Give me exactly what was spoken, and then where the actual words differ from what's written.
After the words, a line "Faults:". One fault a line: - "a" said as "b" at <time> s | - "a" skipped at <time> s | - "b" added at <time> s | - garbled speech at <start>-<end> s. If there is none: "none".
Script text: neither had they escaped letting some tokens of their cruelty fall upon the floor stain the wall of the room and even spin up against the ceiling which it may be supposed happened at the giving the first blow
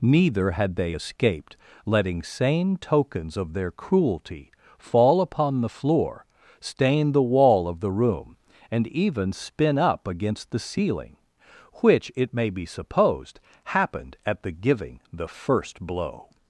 neither had they escaped letting same tokens of their cruelty fall upon the floor stain the wall of the room and even spin up against the ceiling which it may be supposed happened at the giving the first blow
Faults:
- "some" said as "same" at 2.2 s